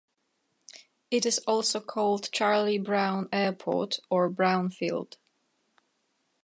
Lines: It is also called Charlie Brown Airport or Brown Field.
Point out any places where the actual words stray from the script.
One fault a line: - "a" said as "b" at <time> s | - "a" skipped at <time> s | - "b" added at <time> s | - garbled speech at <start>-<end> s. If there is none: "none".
none